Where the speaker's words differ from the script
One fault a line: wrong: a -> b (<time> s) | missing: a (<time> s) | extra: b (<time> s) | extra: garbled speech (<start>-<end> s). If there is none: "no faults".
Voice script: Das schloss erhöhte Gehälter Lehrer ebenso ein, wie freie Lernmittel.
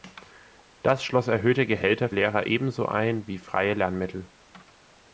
no faults